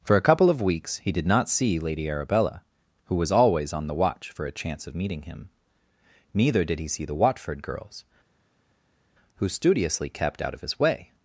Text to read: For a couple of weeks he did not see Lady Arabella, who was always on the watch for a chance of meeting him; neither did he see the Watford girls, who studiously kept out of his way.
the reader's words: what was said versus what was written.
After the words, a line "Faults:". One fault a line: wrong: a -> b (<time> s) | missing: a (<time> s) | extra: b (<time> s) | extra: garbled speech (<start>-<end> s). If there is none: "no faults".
For a couple of weeks he did not see Lady Arabella, who was always on the watch for a chance of meeting him; neither did he see the Watford girls, who studiously kept out of his way.
Faults:
no faults